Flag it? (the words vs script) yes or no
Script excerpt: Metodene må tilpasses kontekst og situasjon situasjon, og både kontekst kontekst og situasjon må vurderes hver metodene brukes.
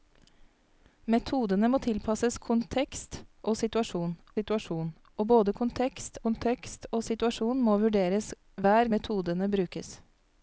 no